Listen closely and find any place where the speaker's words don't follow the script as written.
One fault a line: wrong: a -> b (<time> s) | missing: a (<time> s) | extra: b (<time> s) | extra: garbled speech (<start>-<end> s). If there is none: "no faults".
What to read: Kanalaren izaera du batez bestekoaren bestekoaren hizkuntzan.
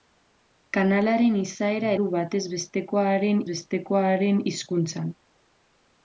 no faults